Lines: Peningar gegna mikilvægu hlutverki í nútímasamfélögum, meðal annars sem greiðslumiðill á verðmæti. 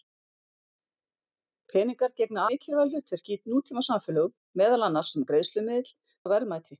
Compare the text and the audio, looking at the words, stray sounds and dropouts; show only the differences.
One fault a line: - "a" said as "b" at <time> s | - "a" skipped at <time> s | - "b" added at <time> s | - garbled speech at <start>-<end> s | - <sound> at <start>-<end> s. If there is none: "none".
none